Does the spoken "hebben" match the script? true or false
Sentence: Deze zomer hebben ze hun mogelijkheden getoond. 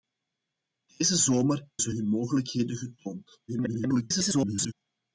false